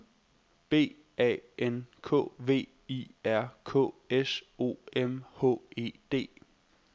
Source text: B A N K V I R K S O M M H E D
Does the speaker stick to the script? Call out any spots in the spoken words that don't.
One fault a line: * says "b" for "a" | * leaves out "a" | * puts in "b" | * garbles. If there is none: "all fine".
* leaves out "M"